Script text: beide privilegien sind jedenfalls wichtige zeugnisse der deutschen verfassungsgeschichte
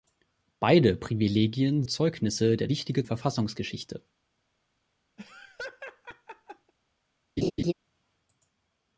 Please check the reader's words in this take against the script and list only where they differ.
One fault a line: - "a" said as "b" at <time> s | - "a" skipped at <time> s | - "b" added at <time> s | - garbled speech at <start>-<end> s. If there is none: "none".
- "sind jedenfalls wichtige" skipped at 1.8 s
- "deutschen" said as "wichtige" at 2.7 s